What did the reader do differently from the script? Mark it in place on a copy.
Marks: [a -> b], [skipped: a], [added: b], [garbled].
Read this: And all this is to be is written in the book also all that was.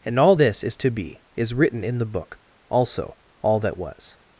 And all this is to be is written in the book also all that was.